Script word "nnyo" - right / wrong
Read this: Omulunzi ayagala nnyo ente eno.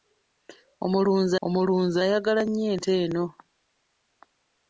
right